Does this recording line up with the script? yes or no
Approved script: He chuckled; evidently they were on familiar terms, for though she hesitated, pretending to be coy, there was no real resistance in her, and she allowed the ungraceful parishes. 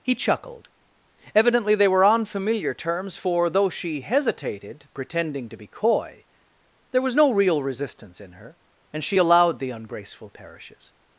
yes